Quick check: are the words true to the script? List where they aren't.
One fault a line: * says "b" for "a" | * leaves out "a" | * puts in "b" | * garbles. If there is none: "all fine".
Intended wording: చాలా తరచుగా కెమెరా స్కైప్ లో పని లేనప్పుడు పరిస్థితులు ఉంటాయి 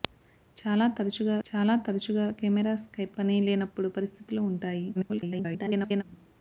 * puts in "చాలా తరచుగా"
* leaves out "లో"
* garbles